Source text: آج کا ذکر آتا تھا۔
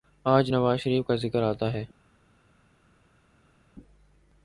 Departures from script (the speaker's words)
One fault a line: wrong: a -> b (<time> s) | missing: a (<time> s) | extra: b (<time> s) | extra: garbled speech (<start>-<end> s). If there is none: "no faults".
extra: نواز شریف (0.5 s)
wrong: تھا -> ہے (1.7 s)